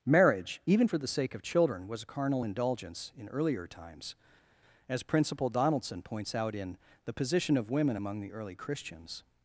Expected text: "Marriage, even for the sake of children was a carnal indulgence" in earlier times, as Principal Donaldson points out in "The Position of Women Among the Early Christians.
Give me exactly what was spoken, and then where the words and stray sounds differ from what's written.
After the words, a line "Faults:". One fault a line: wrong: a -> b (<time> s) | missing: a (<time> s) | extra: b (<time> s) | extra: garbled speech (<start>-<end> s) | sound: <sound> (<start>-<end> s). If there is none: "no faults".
"Marriage, even for the sake of children was a carnal indulgence" in earlier times, as Principal Donaldson points out in "The Position of Women Among the Early Christians.
Faults:
no faults